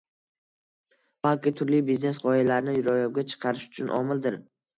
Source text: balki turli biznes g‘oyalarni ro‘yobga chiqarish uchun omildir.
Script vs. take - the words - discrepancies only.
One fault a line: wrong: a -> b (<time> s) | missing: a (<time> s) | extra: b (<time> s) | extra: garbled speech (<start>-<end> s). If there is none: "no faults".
no faults